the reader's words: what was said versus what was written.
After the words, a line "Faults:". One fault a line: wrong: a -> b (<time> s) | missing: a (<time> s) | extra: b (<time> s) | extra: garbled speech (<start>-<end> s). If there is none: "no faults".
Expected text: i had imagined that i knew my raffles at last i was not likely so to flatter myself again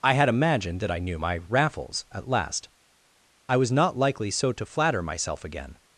i had imagined that i knew my raffles at last i was not likely so to flatter myself again
Faults:
no faults